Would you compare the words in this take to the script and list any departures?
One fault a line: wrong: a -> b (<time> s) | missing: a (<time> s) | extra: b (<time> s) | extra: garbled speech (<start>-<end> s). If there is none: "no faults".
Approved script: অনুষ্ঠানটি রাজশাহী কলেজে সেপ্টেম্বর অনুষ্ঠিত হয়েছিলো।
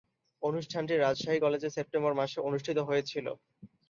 extra: মাসে (2.2 s)